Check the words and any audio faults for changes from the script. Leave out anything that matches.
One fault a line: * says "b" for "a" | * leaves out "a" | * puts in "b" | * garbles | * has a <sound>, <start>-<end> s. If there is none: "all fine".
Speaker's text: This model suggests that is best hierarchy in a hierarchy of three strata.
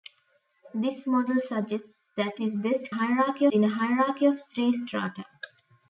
all fine